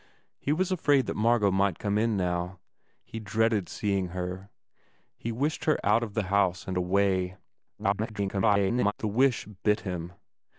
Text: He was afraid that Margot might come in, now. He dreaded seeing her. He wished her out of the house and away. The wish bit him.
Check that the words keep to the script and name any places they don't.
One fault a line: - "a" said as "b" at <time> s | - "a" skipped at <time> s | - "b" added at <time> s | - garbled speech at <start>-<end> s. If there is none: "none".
- garbled speech at 7.8-8.9 s